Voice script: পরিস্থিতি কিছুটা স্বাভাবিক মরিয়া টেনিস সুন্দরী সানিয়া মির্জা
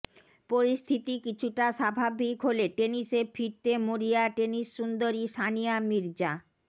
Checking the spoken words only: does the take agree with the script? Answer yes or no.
no